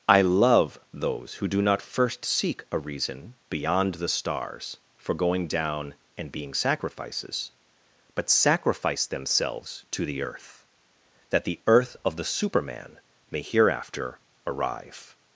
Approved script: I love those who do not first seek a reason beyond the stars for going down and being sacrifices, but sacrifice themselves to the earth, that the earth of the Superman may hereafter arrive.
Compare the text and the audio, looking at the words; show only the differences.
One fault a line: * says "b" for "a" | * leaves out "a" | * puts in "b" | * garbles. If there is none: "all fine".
all fine